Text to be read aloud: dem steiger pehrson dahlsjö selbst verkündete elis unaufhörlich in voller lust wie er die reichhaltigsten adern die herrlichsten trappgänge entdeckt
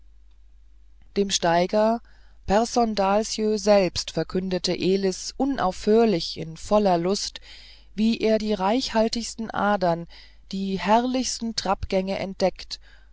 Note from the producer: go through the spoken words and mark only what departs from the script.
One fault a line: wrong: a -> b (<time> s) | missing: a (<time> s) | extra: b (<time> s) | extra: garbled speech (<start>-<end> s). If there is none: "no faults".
no faults